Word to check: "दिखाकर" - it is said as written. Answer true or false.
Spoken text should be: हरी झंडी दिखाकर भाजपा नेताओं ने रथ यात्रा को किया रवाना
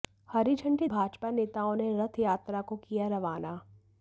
false